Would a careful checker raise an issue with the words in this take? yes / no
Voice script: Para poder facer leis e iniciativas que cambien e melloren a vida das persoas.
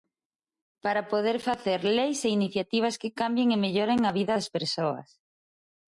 no